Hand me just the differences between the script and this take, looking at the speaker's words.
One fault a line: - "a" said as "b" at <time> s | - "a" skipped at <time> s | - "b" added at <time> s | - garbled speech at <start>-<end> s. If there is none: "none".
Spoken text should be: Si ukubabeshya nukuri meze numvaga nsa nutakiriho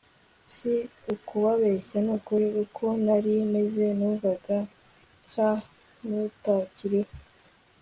- "uko nari" added at 2.6 s